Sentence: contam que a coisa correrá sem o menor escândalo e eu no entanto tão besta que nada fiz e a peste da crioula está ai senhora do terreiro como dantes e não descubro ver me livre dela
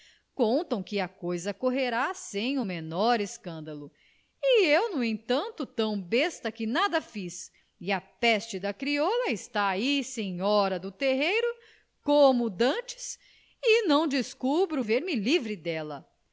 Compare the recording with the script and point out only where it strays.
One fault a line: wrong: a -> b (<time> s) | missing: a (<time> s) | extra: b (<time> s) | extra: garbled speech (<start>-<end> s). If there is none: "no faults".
no faults